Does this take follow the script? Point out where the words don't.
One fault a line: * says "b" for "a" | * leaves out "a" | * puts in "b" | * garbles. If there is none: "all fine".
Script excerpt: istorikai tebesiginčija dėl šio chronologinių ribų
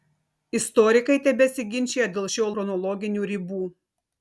all fine